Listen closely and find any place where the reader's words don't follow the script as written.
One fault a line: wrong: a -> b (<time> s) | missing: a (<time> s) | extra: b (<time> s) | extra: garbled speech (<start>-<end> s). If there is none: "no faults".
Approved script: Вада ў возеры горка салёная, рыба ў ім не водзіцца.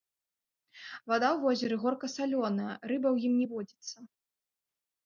no faults